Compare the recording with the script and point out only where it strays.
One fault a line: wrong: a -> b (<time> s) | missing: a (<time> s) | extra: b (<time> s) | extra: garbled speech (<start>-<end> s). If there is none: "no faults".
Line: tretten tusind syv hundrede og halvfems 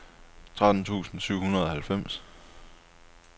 no faults